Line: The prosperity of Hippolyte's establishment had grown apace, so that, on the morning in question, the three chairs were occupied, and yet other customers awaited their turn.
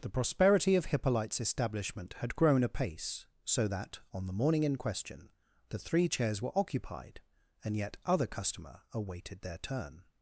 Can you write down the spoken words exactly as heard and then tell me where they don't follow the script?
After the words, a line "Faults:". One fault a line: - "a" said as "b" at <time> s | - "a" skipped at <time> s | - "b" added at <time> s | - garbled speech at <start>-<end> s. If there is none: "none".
The prosperity of Hippolyte's establishment had grown apace, so that, on the morning in question, the three chairs were occupied, and yet other customer awaited their turn.
Faults:
- "customers" said as "customer" at 8.3 s